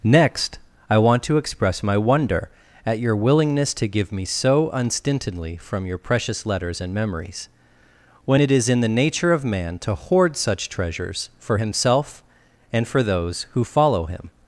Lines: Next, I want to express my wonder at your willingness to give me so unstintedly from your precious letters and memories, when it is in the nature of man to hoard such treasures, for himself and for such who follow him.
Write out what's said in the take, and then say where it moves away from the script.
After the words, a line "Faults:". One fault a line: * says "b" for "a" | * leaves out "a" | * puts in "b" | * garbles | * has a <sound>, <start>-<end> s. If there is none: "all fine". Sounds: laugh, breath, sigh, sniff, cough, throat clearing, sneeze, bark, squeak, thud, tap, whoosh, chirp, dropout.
Next, I want to express my wonder at your willingness to give me so unstintedly from your precious letters and memories, when it is in the nature of man to hoard such treasures, for himself and for those who follow him.
Faults:
* says "those" for "such"